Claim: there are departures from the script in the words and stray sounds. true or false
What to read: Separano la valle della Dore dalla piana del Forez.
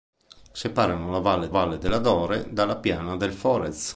true